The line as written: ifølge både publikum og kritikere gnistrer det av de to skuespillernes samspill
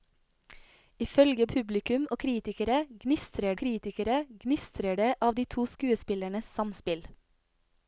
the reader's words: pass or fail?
fail